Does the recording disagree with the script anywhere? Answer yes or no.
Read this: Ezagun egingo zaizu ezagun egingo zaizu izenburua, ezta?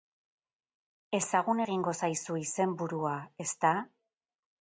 yes